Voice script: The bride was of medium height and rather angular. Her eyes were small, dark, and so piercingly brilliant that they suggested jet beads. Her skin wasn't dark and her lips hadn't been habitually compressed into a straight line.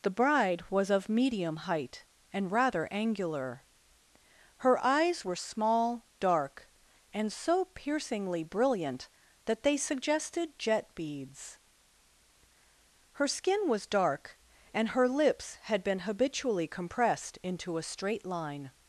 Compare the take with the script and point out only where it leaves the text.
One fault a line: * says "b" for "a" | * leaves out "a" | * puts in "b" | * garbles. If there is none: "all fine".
* says "was" for "wasn't"
* says "had" for "hadn't"